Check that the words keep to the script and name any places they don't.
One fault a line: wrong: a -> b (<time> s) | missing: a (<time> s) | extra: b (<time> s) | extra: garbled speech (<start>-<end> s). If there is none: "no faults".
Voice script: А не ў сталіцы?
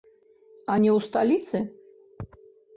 no faults